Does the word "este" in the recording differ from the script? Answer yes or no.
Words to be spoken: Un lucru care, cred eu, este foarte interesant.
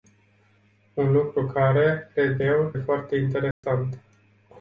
yes